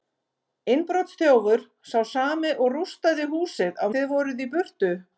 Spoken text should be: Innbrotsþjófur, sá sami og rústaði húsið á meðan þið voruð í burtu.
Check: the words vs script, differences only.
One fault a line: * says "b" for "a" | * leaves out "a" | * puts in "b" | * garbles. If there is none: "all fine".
* leaves out "meðan"